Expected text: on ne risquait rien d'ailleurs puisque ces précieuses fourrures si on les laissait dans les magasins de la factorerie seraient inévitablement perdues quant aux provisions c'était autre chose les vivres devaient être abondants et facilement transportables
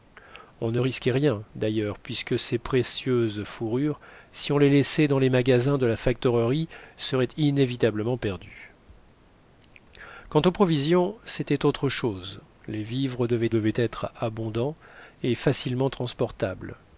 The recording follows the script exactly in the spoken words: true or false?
false